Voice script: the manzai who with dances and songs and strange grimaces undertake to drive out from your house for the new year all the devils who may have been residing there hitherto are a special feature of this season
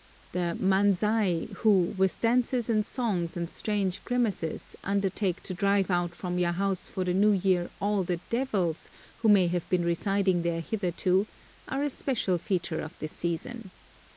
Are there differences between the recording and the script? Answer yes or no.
no